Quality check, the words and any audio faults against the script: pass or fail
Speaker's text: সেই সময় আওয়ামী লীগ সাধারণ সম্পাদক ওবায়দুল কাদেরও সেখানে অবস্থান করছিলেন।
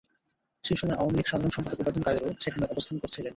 pass